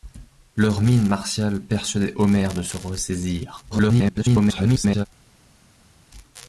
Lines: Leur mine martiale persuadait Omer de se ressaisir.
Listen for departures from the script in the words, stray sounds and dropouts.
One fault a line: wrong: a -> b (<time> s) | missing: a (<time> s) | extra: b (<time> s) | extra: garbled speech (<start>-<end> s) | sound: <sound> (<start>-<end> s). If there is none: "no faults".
extra: garbled speech (3.7-5.1 s)